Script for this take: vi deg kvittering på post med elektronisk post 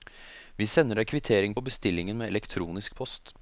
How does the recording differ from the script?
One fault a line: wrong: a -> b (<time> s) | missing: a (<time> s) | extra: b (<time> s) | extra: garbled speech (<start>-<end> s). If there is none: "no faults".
extra: sender (0.7 s)
wrong: post -> bestillingen (1.7 s)